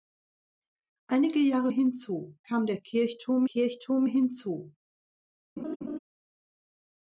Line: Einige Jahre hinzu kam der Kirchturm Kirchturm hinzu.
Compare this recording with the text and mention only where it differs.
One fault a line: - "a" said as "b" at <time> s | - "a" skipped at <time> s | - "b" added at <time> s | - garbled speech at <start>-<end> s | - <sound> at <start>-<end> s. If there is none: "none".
- laugh at 5.6-6.0 s